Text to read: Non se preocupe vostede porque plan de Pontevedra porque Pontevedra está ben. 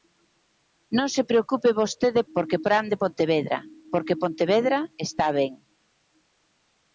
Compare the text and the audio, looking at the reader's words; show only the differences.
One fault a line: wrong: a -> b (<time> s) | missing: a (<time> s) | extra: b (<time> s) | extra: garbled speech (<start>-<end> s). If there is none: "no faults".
no faults